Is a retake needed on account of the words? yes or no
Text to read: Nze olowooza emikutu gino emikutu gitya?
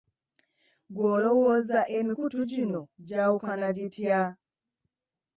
yes